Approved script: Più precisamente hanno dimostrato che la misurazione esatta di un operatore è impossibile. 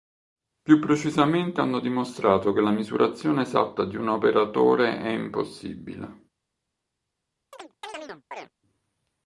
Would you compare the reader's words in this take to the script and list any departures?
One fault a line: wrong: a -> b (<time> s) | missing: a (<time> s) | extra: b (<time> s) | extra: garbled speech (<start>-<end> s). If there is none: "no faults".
no faults